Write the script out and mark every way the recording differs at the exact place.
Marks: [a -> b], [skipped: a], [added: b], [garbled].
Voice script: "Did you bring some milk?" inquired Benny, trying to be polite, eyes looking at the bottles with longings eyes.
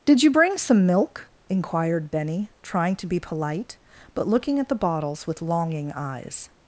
"Did you bring some milk?" inquired Benny, trying to be polite, [eyes -> but] looking at the bottles with [longings -> longing] eyes.